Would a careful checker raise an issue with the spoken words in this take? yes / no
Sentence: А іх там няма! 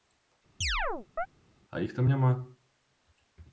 no